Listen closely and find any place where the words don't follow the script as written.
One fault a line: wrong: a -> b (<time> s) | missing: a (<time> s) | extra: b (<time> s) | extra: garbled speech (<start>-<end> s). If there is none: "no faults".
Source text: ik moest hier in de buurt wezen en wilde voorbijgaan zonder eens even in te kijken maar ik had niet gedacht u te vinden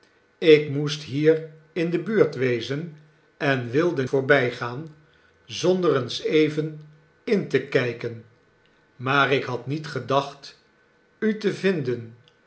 no faults